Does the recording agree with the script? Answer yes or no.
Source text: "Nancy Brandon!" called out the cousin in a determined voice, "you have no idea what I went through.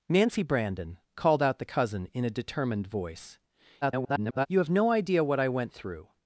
no